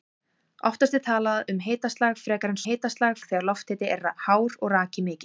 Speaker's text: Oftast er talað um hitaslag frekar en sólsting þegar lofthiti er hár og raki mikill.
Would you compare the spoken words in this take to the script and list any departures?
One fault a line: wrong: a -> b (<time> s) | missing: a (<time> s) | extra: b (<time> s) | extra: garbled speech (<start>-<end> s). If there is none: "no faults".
wrong: sólsting -> hitaslag (2.7 s)